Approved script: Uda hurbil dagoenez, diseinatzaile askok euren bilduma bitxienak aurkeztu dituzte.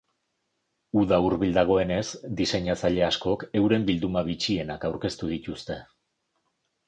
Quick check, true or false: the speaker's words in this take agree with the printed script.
true